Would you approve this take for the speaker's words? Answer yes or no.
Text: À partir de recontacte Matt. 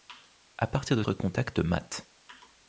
yes